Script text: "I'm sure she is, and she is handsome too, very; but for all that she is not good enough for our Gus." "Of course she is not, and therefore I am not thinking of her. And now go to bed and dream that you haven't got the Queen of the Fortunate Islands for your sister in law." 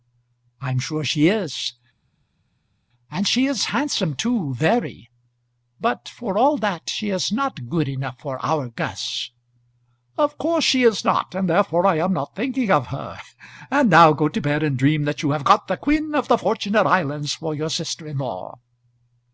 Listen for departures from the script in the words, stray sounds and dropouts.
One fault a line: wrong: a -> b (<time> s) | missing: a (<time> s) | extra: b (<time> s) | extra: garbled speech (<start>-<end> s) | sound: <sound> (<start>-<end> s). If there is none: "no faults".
wrong: haven't -> have (15.3 s)